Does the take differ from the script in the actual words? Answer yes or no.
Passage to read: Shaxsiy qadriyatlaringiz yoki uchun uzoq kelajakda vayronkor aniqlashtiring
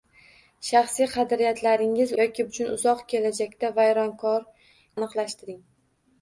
no